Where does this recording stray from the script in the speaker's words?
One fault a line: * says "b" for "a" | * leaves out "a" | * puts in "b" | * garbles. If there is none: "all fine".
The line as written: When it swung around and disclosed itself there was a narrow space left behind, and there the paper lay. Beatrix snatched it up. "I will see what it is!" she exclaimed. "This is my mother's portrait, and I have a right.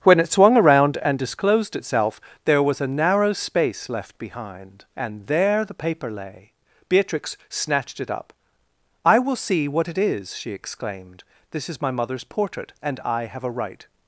all fine